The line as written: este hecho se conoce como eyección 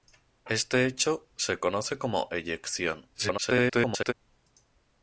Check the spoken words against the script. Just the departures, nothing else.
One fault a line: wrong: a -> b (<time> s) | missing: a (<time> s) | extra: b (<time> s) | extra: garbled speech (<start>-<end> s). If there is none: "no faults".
extra: garbled speech (3.1-4.1 s)